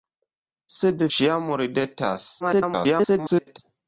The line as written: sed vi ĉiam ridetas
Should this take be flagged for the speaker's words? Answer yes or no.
yes